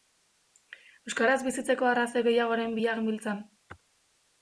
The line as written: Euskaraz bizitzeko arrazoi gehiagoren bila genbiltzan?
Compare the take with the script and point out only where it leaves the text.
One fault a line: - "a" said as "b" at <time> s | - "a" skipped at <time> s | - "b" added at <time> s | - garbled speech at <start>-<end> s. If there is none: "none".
none